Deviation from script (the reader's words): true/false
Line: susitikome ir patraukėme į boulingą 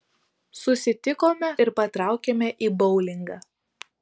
false